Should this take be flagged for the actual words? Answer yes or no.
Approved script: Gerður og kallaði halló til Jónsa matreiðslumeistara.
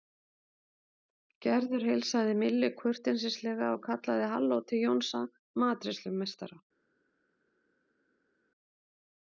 yes